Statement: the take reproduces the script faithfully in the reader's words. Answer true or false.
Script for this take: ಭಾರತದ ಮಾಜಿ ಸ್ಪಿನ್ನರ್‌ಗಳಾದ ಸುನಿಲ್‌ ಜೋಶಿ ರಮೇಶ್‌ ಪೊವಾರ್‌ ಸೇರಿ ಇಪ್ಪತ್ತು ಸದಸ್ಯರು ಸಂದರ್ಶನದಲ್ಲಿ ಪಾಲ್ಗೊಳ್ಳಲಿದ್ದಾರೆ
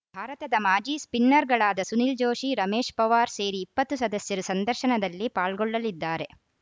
true